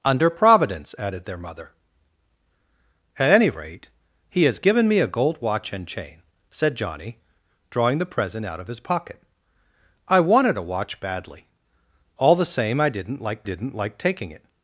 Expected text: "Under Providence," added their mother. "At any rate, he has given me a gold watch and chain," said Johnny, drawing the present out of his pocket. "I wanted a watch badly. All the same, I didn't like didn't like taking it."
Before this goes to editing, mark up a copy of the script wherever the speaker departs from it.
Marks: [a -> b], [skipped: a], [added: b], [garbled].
"Under Providence," added their mother. "At any rate, he has given me a gold watch and chain," said Johnny, drawing the present out of his pocket. "I wanted a watch badly. All the same, I didn't like didn't like taking it."